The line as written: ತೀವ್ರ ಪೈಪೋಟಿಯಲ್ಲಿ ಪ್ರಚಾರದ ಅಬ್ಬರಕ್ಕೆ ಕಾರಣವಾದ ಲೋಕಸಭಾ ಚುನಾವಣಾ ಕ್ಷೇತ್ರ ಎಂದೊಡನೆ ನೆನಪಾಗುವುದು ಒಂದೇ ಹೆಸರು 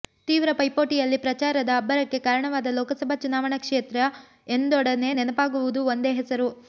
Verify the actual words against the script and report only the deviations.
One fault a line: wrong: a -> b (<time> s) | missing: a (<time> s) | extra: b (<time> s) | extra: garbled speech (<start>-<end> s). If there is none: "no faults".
no faults